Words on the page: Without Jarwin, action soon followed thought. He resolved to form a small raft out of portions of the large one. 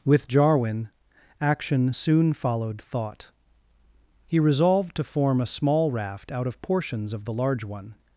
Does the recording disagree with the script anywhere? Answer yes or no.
yes